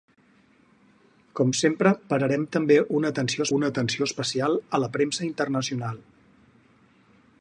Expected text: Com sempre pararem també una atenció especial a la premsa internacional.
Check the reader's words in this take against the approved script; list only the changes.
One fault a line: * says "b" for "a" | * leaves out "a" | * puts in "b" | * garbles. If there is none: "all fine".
* puts in "una atenció"